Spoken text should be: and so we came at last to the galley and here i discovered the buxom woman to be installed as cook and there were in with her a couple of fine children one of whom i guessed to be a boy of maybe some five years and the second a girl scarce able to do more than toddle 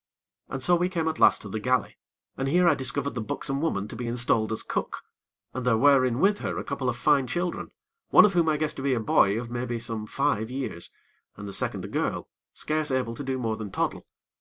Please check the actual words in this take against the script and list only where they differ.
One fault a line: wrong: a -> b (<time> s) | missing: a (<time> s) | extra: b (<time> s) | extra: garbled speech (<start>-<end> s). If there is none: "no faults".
no faults